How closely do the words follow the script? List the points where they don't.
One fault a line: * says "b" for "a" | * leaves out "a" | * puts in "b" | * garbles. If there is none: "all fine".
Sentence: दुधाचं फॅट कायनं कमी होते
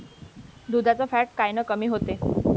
all fine